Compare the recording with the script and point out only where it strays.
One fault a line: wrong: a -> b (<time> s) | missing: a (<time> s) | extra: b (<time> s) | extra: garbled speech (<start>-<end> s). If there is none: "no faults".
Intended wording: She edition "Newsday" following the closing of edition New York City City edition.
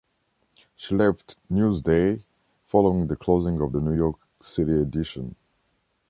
wrong: edition -> left (0.9 s)
wrong: edition -> the (3.7 s)
missing: City (4.8 s)